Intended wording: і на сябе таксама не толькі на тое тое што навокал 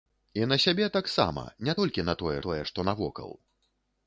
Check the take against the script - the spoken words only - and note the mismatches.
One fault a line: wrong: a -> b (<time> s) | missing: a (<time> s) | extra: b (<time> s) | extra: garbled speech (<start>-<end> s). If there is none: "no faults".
no faults